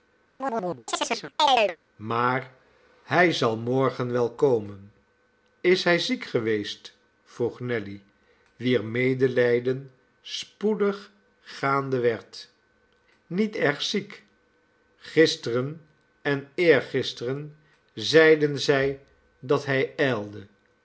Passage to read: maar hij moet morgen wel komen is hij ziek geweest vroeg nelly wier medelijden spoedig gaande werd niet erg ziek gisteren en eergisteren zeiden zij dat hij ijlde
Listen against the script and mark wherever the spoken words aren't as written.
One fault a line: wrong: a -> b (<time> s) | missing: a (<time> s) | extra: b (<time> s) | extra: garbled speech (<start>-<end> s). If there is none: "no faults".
wrong: moet -> zal (3.3 s)